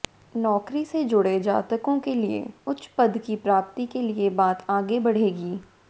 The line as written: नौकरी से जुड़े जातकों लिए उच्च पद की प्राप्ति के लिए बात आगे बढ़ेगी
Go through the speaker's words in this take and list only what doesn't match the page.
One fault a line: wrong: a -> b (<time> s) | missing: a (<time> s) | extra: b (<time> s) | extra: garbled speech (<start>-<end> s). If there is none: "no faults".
extra: के (2.0 s)